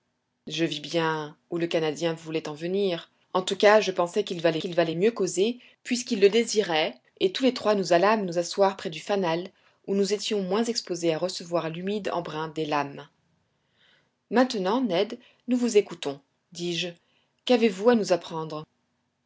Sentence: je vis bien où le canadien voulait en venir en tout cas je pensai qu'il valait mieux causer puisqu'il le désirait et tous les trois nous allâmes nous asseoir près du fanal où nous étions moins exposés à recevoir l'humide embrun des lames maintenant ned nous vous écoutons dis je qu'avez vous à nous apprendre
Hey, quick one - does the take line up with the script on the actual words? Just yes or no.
no